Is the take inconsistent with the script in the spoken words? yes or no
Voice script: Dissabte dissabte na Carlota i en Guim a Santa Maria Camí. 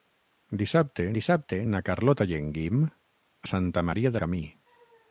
no